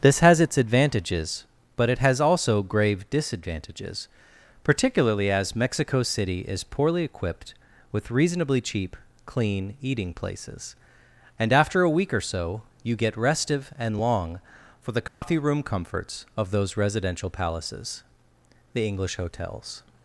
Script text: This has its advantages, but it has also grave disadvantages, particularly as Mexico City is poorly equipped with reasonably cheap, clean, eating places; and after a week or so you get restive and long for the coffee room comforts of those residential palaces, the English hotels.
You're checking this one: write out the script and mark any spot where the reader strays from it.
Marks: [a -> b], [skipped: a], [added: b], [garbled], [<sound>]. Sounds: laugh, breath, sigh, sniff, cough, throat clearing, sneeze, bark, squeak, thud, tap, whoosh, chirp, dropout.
This has its advantages, but it has also grave disadvantages, particularly as Mexico City is poorly equipped with reasonably cheap, clean, eating places; and after a week or so you get restive and long for the coffee [dropout] room comforts of those residential palaces, the English hotels.